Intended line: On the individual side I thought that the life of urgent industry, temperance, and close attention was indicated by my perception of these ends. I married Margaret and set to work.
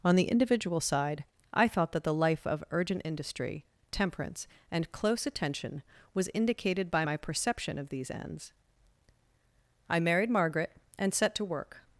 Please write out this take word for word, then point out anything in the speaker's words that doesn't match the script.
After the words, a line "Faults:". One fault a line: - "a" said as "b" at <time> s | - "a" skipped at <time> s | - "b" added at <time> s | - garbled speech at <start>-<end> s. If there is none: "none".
On the individual side I thought that the life of urgent industry, temperance, and close attention was indicated by my perception of these ends. I married Margaret and set to work.
Faults:
none